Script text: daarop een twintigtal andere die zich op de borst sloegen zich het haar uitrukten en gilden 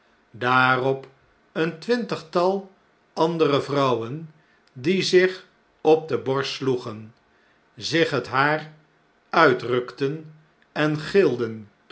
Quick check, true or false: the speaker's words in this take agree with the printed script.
false